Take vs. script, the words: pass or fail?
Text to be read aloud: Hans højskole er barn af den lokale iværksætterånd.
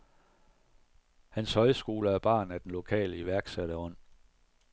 pass